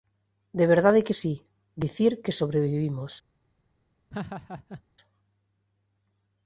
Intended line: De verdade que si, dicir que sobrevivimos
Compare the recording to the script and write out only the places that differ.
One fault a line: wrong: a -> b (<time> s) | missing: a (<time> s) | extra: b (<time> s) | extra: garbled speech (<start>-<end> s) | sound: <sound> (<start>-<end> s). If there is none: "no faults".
sound: laugh (4.1-4.8 s)